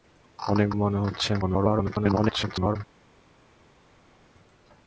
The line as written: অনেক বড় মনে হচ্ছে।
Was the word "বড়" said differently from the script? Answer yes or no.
yes